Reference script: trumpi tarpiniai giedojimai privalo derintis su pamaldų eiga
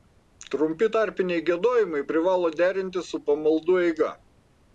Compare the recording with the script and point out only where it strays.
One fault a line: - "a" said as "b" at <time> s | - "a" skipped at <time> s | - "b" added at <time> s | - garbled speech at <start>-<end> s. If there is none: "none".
none